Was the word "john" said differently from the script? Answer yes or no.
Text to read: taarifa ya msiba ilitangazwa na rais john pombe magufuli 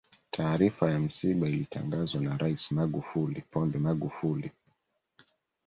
yes